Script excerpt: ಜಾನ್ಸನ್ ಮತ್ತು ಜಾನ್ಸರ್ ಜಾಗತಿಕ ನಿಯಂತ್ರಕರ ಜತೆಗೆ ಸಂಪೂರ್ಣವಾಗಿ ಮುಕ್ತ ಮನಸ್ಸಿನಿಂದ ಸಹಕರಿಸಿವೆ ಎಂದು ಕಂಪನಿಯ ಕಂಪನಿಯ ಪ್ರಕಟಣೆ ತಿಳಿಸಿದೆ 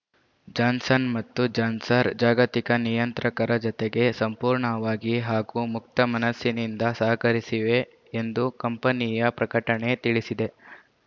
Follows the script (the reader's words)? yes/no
no